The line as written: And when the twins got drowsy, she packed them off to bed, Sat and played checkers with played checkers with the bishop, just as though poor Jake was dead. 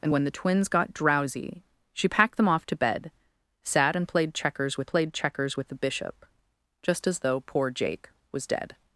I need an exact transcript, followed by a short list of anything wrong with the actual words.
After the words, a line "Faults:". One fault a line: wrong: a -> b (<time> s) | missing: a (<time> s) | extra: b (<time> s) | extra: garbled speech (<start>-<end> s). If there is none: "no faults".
And when the twins got drowsy, she packed them off to bed, Sat and played checkers with played checkers with the bishop, just as though poor Jake was dead.
Faults:
no faults